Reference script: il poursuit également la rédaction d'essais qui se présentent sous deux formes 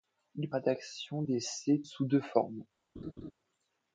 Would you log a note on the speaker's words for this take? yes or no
yes